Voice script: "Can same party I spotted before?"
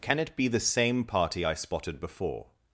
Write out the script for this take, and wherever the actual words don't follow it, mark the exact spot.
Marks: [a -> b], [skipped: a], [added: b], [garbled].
"Can [added: it be the] same party I spotted before?"